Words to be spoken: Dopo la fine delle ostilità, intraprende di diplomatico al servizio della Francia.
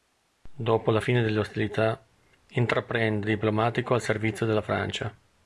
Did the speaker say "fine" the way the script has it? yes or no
yes